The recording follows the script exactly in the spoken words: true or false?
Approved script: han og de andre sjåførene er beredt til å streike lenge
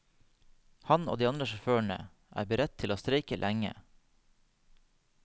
true